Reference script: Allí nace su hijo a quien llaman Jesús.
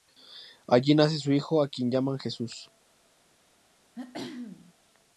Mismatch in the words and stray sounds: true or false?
true